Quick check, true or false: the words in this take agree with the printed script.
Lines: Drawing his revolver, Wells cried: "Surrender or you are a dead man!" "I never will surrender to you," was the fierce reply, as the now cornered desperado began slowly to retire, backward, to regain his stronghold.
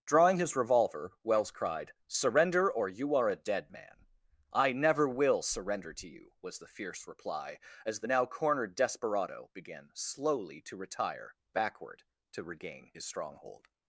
true